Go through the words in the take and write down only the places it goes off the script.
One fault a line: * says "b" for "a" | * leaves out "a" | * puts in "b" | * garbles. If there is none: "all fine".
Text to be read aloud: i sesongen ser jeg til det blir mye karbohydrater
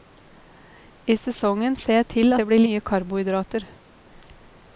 all fine